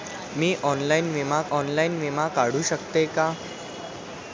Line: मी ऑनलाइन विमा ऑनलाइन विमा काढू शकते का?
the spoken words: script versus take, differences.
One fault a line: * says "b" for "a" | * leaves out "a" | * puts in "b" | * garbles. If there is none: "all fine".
all fine